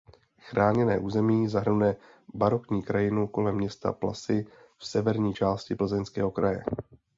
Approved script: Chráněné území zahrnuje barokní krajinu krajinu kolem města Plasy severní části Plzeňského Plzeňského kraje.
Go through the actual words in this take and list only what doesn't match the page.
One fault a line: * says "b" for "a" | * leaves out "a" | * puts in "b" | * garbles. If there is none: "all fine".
* leaves out "krajinu"
* puts in "v"
* leaves out "Plzeňského"